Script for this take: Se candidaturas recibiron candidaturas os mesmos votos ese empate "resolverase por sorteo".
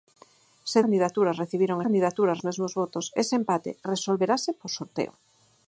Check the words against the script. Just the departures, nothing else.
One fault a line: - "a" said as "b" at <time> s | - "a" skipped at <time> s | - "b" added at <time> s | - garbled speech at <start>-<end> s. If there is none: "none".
none